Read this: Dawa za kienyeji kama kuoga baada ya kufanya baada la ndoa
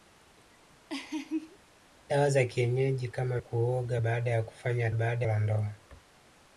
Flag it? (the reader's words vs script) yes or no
no